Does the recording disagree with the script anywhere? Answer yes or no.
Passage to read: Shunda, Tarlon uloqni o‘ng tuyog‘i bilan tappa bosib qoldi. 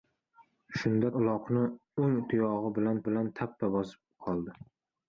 yes